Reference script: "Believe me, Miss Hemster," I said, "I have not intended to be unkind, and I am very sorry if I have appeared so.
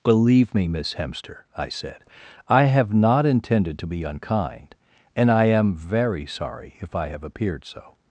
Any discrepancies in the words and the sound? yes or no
no